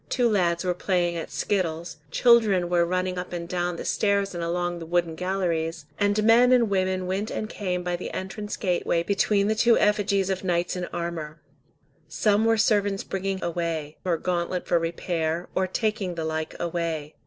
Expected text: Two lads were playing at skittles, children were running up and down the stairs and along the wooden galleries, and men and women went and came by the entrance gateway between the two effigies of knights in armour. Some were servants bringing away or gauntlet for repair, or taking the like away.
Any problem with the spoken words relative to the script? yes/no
no